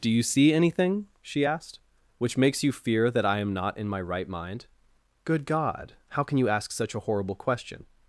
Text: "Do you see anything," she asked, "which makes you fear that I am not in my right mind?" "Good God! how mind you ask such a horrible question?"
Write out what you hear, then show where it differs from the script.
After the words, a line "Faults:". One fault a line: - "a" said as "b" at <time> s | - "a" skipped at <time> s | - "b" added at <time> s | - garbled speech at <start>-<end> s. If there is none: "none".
"Do you see anything," she asked, "which makes you fear that I am not in my right mind?" "Good God! how can you ask such a horrible question?"
Faults:
- "mind" said as "can" at 6.2 s